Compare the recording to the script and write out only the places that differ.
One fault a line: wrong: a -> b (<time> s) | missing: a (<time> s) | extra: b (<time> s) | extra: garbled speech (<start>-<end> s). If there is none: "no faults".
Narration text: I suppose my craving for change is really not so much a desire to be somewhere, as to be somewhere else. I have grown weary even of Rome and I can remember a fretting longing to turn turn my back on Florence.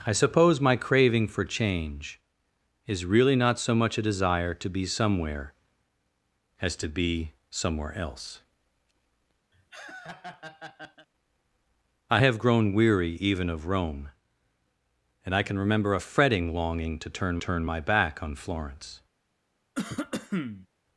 no faults